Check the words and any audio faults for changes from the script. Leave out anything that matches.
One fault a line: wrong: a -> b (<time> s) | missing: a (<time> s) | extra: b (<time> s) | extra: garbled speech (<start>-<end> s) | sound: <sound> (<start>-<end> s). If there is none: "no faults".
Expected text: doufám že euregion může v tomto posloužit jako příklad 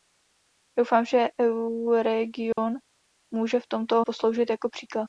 sound: dropout (2.5-2.6 s)